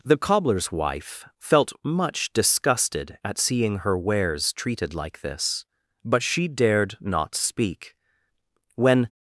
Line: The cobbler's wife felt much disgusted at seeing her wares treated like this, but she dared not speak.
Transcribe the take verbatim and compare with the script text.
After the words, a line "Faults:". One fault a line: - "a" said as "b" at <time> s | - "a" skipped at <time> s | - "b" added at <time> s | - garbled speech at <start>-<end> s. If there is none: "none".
The cobbler's wife felt much disgusted at seeing her wares treated like this, but she dared not speak. When
Faults:
- "When" added at 8.8 s